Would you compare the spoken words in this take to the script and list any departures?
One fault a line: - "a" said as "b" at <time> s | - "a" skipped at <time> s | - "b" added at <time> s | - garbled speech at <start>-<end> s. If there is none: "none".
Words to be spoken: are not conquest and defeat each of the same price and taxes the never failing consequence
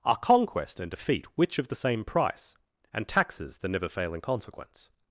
- "not" skipped at 0.2 s
- "each" said as "which" at 1.4 s